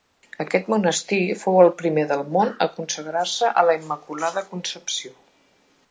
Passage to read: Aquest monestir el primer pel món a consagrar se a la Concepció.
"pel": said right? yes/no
no